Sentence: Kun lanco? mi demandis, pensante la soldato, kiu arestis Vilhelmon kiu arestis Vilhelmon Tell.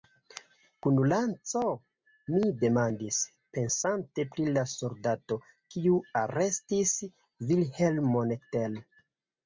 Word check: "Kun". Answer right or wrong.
right